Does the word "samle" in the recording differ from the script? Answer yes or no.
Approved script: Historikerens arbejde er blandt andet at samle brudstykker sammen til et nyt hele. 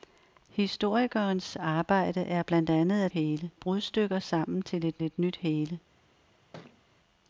yes